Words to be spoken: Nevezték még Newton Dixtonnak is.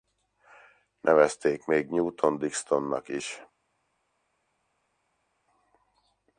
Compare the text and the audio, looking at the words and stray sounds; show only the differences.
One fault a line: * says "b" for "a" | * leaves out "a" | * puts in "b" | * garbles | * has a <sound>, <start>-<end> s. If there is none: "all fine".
all fine